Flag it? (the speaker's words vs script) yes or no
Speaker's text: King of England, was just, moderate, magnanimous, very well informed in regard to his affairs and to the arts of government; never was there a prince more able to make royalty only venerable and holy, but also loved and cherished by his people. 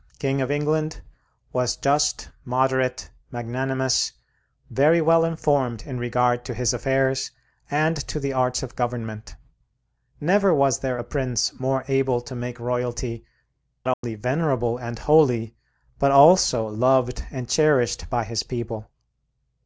no